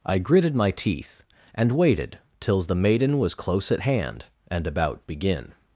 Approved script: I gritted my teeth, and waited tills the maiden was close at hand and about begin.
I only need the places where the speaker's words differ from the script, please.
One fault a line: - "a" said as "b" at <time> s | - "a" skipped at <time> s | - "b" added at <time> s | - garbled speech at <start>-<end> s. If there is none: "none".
none